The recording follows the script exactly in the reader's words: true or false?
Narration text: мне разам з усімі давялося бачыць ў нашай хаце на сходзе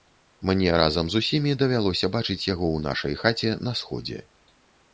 false